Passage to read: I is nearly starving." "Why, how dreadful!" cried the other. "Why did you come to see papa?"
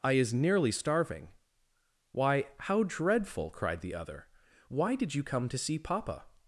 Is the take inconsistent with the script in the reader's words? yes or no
no